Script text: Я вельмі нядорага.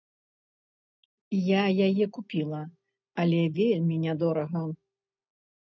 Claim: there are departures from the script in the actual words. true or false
true